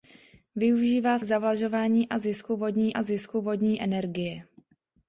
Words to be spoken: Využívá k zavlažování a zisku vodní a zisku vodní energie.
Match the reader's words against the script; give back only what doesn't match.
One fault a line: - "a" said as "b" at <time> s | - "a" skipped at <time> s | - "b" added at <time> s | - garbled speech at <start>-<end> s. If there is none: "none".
none